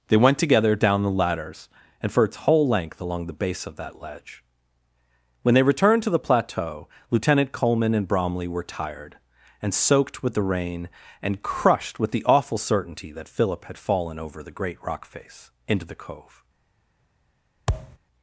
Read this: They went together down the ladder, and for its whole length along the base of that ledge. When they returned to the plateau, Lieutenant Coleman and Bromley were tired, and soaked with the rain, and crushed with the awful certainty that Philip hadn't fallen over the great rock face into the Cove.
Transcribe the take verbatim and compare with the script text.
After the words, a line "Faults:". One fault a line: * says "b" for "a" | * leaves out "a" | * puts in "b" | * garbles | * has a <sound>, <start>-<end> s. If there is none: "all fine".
They went together down the ladders, and for its whole length along the base of that ledge. When they returned to the plateau, Lieutenant Coleman and Bromley were tired, and soaked with the rain, and crushed with the awful certainty that Philip had fallen over the great rock face into the Cove.
Faults:
* says "ladders" for "ladder"
* says "had" for "hadn't"
* has a thud, 17.7-18.0 s